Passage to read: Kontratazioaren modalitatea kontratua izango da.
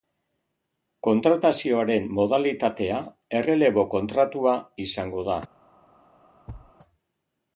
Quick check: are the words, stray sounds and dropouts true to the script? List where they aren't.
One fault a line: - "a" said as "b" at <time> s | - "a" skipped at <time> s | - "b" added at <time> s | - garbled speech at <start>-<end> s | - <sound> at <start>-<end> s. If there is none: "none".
- "errelebo" added at 3.4 s
- thud at 6.5-6.7 s